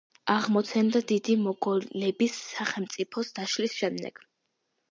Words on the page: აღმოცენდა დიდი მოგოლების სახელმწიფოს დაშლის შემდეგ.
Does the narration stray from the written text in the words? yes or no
no